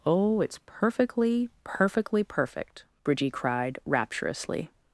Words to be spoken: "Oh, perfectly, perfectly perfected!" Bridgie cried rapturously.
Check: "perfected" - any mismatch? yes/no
yes